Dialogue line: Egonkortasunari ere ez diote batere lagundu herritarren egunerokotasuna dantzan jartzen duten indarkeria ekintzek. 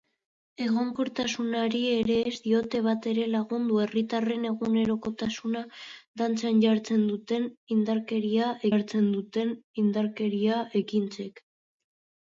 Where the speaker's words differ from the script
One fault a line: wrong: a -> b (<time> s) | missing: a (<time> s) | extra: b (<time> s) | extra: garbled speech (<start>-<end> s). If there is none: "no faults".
extra: jartzen duten indarkeria (8.7 s)